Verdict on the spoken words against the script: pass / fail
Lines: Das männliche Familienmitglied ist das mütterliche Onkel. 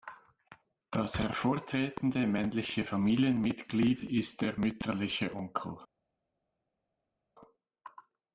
fail